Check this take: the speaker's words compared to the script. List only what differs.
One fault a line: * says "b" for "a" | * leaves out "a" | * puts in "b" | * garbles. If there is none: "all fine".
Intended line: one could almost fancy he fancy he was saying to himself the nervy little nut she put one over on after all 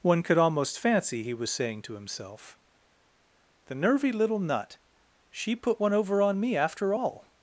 * leaves out "fancy he"
* puts in "me"